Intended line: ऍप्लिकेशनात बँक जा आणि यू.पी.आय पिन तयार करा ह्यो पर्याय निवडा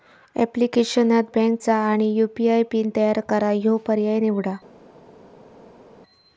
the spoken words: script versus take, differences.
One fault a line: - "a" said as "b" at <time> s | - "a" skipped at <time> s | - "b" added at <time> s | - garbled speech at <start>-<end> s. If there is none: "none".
none